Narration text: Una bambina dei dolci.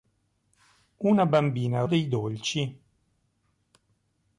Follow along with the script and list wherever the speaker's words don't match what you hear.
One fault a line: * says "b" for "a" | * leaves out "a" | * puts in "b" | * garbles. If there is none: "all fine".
all fine